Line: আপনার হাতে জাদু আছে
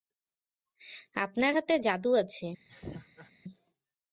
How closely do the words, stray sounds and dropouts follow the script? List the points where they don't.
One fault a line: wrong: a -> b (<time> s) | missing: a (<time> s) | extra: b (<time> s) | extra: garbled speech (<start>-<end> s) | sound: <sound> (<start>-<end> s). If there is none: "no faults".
sound: laugh (2.7-3.3 s)